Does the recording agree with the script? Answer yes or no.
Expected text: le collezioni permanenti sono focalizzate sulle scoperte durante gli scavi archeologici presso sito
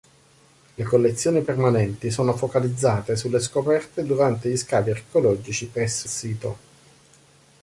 yes